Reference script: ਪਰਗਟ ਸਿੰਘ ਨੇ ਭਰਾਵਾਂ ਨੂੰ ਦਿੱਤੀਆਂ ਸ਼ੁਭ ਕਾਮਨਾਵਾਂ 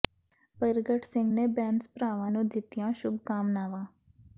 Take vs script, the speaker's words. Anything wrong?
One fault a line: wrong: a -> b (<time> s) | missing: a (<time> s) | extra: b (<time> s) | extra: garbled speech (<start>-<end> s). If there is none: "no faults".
extra: ਬੈਂਸ (1.5 s)